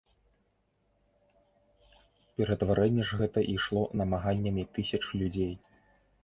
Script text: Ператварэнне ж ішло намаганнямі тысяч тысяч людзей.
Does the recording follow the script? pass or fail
fail